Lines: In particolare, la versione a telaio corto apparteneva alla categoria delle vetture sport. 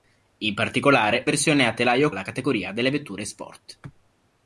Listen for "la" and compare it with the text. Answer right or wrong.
wrong